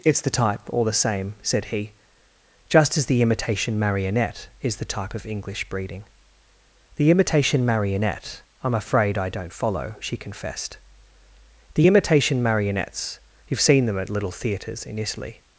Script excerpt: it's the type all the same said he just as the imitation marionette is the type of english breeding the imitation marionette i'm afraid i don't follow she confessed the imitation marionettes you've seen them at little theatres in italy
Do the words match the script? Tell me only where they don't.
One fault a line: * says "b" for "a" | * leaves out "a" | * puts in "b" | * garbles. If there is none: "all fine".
all fine